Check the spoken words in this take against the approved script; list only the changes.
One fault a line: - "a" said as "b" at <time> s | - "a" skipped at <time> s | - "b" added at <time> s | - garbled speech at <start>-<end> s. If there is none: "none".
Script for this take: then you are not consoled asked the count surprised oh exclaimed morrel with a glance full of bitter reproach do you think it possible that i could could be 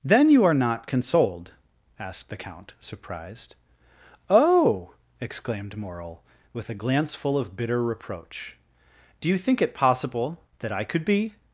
- "could" skipped at 11.0 s